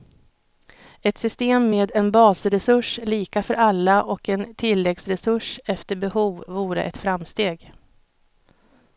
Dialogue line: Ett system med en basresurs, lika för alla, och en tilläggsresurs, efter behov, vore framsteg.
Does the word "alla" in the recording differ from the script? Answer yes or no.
no